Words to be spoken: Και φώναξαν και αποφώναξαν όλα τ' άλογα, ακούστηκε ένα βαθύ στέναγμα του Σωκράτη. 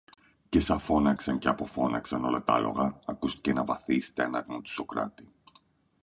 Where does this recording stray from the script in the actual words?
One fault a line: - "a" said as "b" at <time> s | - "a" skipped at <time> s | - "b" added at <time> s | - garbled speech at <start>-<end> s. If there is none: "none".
- "σα" added at 0.6 s